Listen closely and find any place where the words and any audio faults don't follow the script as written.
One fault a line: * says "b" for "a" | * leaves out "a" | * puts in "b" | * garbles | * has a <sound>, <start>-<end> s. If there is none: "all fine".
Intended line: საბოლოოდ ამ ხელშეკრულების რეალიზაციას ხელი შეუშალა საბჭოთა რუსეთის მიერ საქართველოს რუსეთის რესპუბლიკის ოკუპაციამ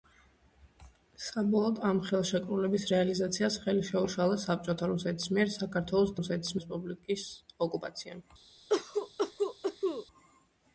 * has a cough, 8.7-10.1 s